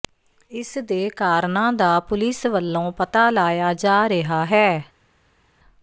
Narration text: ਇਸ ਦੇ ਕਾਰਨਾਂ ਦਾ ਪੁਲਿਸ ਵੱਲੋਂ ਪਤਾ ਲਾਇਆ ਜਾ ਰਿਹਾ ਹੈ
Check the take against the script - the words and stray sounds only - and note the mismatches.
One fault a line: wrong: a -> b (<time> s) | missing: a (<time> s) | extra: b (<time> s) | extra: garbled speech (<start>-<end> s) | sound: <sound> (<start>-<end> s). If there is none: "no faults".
no faults